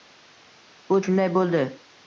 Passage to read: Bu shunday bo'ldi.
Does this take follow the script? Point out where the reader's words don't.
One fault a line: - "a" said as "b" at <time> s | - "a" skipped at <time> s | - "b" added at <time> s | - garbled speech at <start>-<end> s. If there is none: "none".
none